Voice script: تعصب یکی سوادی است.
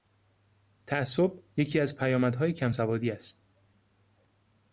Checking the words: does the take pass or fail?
fail